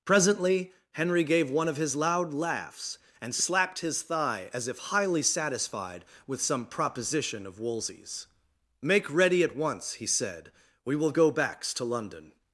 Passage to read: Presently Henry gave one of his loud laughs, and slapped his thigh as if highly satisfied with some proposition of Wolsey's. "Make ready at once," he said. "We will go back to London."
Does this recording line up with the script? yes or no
no